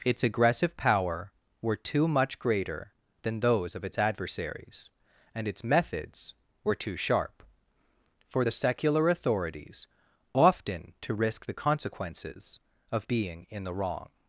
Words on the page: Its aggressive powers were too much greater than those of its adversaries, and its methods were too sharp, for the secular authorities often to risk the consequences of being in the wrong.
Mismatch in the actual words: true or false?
true